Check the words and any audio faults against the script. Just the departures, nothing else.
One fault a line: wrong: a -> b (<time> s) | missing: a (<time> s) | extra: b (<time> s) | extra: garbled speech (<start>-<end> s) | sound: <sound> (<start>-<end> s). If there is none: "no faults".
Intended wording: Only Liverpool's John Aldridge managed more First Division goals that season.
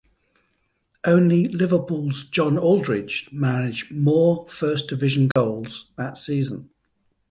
sound: dropout (5.3-5.4 s)